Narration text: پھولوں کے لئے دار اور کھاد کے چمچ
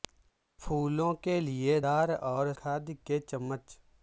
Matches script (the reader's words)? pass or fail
pass